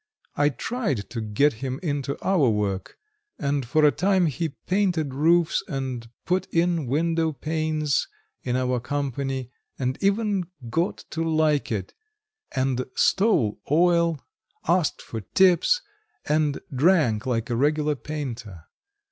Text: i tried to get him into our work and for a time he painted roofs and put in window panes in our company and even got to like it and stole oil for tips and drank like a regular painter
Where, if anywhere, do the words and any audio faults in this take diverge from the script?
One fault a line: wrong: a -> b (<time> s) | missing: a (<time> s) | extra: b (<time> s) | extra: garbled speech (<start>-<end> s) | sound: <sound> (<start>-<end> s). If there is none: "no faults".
extra: asked (14.7 s)